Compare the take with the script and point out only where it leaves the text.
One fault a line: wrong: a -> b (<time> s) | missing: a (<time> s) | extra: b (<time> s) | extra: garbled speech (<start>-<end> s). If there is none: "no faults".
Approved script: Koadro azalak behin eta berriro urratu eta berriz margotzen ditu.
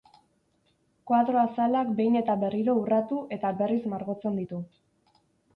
no faults